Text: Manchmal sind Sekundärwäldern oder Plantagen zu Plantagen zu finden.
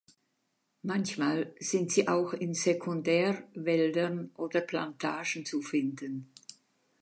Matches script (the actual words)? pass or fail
fail